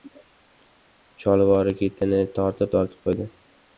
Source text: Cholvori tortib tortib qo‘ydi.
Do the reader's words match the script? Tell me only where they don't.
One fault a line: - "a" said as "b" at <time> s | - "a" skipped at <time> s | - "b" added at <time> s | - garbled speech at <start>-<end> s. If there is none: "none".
- "ketini" added at 1.8 s